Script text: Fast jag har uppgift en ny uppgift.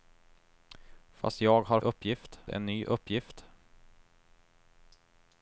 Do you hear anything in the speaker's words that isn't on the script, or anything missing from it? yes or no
no